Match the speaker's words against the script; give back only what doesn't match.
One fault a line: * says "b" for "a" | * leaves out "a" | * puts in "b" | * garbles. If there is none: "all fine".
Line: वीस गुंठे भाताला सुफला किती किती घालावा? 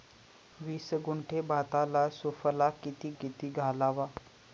all fine